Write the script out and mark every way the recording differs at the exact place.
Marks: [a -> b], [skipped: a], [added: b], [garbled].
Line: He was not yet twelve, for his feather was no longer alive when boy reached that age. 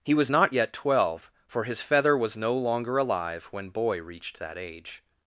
He was not yet twelve, for his feather was no longer alive when boy reached that age.